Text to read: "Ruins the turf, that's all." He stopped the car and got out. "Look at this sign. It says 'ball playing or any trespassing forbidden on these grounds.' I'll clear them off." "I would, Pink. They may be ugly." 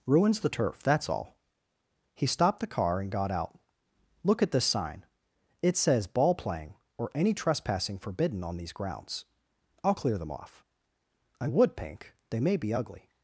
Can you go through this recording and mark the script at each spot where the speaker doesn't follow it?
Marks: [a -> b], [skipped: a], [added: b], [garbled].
"Ruins the turf, that's all." He stopped the car and got out. "Look at this sign. It says 'ball playing or any trespassing forbidden on these grounds.' I'll clear them off." "I would, Pink. They may be ugly."